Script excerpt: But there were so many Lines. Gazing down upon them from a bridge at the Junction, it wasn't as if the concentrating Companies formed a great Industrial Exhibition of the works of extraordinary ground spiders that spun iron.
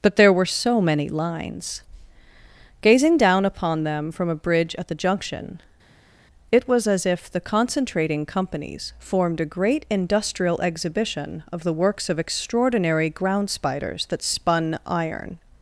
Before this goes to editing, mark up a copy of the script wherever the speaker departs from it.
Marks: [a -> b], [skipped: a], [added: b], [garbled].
But there were so many Lines. Gazing down upon them from a bridge at the Junction, it [wasn't -> was] as if the concentrating Companies formed a great Industrial Exhibition of the works of extraordinary ground spiders that spun iron.